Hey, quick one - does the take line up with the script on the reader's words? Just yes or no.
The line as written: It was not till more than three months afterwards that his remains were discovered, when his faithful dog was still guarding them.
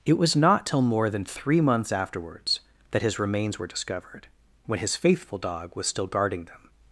yes